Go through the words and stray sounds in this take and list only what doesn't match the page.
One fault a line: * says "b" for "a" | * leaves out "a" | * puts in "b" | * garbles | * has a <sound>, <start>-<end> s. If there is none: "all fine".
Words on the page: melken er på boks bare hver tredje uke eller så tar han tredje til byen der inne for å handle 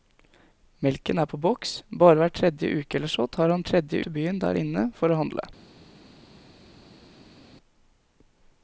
all fine